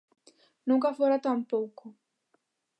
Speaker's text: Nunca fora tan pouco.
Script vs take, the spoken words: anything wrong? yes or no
no